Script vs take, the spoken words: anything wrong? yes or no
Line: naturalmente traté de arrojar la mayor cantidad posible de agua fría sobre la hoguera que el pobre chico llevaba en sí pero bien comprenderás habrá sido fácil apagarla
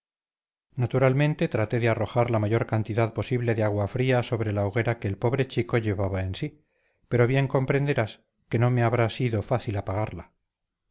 yes